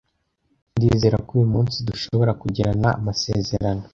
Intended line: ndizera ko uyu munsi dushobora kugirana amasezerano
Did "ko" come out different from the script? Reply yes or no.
no